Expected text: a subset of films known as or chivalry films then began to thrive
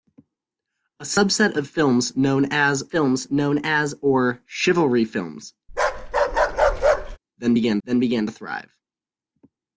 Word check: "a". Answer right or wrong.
right